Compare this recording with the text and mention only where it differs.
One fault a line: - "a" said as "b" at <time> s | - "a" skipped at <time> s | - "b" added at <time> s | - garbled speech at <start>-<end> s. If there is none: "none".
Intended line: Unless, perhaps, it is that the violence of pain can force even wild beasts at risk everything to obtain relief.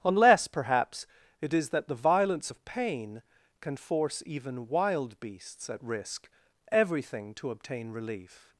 none